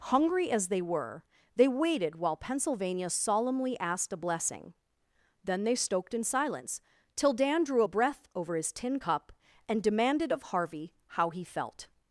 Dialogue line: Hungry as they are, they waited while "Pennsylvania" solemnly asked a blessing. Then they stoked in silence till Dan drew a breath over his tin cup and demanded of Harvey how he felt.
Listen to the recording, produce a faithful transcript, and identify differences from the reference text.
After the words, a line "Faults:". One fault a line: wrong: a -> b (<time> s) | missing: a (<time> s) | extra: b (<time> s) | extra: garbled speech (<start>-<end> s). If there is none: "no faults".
Hungry as they were, they waited while "Pennsylvania" solemnly asked a blessing. Then they stoked in silence till Dan drew a breath over his tin cup and demanded of Harvey how he felt.
Faults:
wrong: are -> were (0.8 s)